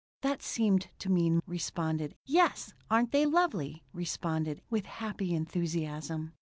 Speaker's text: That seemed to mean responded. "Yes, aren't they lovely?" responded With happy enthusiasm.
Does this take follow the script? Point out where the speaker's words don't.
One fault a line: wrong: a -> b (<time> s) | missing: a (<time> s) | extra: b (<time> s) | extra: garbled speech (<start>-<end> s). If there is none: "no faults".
no faults